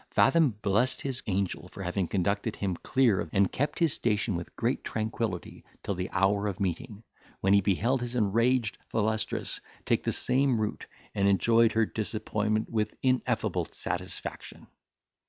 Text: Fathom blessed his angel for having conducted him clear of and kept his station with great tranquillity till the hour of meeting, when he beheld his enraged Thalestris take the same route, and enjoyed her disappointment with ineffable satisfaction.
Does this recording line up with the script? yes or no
yes